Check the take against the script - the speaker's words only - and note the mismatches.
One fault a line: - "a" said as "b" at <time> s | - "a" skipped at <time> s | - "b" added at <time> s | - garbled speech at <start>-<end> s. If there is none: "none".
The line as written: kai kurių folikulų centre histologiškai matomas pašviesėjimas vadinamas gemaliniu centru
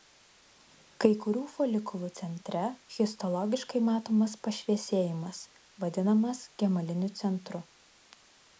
none